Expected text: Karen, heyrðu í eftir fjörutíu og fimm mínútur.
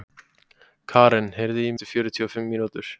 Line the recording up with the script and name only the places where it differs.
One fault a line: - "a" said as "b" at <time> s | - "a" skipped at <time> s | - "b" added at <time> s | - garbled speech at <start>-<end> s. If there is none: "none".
none